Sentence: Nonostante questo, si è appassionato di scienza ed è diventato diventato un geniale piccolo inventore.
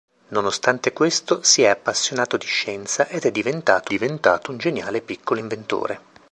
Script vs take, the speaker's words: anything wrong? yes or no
no